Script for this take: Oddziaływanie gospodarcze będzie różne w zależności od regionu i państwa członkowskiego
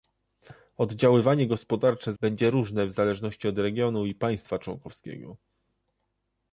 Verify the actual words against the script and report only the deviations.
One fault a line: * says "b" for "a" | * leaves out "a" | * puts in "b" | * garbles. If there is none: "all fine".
all fine